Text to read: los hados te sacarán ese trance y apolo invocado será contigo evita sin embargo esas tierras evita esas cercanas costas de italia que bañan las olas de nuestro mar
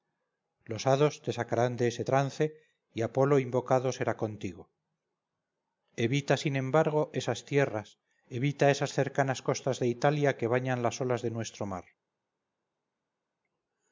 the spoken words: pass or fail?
fail